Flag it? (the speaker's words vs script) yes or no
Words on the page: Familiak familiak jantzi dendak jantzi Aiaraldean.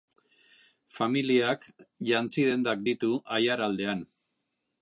yes